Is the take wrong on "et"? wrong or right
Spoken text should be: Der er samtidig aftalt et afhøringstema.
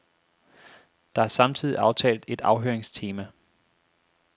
right